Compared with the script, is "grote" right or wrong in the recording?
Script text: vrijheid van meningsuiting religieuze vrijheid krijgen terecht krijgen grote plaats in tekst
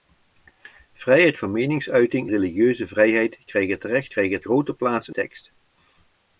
right